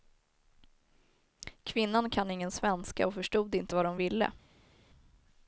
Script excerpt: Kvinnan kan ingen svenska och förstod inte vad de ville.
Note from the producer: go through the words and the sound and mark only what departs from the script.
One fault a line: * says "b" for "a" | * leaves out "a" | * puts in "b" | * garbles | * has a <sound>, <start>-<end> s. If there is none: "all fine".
all fine